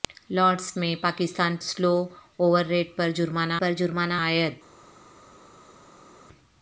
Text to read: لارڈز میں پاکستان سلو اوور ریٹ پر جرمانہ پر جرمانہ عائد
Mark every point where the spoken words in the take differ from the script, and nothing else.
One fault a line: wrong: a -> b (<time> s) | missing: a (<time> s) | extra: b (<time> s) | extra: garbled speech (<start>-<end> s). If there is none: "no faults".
no faults